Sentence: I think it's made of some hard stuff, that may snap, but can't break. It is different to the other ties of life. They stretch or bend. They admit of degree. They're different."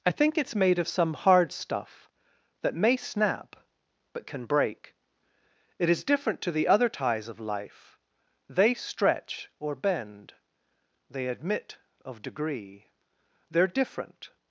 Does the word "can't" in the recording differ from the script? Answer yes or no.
yes